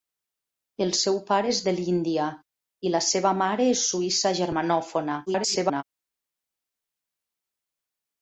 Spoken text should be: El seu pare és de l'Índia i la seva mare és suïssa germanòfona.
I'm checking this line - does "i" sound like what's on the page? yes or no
yes